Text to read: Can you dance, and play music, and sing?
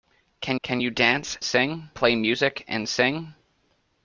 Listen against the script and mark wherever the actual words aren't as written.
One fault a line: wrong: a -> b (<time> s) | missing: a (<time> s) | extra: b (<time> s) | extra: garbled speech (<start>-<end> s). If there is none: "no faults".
extra: can (0.6 s)
wrong: and -> sing (1.4 s)